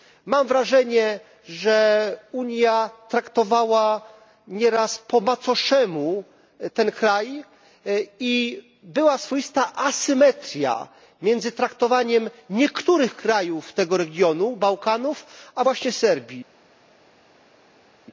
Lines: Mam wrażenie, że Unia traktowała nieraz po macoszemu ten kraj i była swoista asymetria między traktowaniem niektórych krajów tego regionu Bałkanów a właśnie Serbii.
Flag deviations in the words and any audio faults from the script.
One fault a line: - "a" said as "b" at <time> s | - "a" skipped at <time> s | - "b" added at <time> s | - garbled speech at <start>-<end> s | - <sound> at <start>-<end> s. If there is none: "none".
none